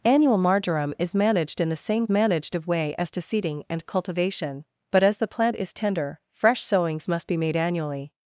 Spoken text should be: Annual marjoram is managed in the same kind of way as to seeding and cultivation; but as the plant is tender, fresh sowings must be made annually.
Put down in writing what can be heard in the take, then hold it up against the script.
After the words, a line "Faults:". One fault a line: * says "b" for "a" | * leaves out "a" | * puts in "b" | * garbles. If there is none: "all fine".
Annual marjoram is managed in the same managed of way as to seeding and cultivation; but as the plant is tender, fresh sowings must be made annually.
Faults:
* says "managed" for "kind"